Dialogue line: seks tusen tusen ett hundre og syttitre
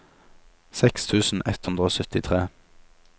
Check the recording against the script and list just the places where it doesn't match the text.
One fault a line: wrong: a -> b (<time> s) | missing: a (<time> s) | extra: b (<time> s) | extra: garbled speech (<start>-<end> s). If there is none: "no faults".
missing: tusen (1.4 s)